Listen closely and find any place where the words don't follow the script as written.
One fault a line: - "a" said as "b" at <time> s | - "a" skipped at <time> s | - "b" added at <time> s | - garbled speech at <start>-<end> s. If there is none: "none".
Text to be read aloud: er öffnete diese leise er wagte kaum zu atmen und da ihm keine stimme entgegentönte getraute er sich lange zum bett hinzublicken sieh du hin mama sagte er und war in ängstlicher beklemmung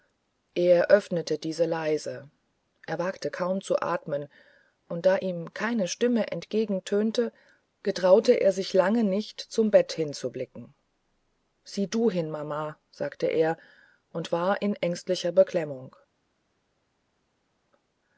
- "nicht" added at 9.0 s